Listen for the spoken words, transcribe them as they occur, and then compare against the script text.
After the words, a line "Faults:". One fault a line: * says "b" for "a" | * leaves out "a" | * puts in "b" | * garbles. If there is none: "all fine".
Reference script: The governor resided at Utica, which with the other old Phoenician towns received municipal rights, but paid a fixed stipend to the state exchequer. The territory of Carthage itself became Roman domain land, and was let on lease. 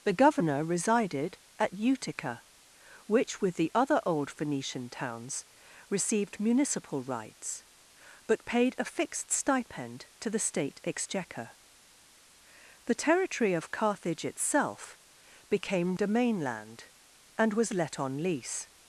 The governor resided at Utica, which with the other old Phoenician towns received municipal rights, but paid a fixed stipend to the state exchequer. The territory of Carthage itself became Domain land, and was let on lease.
Faults:
* leaves out "Roman"